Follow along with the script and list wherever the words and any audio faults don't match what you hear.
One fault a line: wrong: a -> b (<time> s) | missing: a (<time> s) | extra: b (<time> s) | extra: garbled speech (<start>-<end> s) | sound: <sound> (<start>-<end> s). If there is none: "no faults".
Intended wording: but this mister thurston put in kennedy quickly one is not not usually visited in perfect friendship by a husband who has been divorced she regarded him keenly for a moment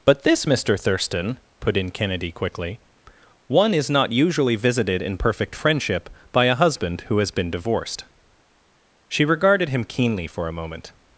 missing: not (4.1 s)